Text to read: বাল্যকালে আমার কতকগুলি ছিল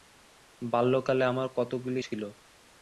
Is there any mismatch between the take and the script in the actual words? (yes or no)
no